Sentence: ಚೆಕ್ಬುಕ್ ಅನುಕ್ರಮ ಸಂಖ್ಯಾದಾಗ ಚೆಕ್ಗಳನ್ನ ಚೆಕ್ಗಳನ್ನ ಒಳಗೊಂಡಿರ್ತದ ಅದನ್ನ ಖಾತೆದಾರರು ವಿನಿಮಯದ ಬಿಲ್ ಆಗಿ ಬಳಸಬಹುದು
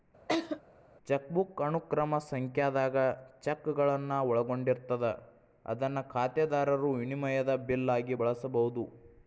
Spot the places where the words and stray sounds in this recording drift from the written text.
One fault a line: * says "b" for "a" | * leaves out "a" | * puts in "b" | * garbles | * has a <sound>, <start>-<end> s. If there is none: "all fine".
* has a laugh, 0.3-0.6 s
* leaves out "ಚೆಕ್ಗಳನ್ನ"